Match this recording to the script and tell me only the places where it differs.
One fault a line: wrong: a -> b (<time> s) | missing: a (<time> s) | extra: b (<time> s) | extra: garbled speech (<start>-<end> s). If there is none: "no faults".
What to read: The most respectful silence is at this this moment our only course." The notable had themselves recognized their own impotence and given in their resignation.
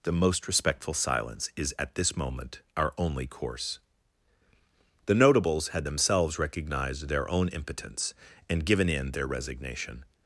missing: this (2.2 s)
wrong: notable -> notables (5.1 s)